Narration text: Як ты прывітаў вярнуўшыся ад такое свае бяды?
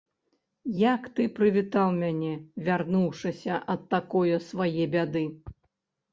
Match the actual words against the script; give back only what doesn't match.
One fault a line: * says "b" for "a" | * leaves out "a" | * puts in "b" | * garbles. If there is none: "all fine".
* puts in "мяне"